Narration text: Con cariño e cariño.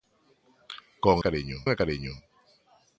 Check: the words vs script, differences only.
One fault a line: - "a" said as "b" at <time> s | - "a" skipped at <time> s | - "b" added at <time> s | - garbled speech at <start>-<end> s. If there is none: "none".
none